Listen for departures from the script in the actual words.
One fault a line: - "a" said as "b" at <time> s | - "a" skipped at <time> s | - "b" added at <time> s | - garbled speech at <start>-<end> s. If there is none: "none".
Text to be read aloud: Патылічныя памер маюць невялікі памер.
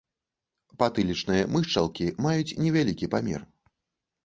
- "памер" said as "мышчалкі" at 1.6 s